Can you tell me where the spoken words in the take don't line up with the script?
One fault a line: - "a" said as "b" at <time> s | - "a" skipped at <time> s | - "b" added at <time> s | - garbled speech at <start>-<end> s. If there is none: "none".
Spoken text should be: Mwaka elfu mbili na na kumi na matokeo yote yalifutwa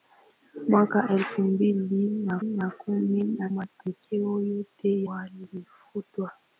none